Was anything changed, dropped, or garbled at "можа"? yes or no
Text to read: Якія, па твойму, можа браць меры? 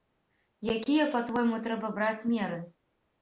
yes